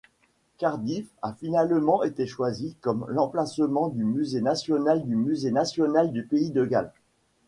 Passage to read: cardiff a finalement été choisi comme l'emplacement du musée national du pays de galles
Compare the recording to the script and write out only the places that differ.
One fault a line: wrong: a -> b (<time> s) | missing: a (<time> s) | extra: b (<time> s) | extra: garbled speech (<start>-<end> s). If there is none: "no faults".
extra: musée national du (5.1 s)